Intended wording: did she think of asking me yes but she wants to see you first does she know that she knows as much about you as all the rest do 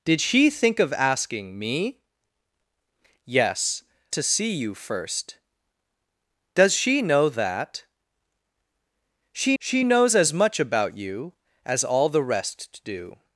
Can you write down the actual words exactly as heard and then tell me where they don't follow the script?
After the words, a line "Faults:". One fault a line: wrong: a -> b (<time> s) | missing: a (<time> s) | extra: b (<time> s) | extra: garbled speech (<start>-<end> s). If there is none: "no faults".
did she think of asking me yes to see you first does she know that she she knows as much about you as all the rest do
Faults:
missing: but she wants (3.8 s)
extra: she (9.6 s)